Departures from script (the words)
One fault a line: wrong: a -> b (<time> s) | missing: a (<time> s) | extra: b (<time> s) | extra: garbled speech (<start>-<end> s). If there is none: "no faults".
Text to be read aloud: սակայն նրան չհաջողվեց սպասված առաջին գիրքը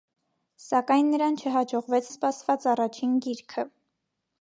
no faults